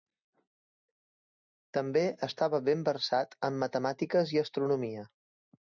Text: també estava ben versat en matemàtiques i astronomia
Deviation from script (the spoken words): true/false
false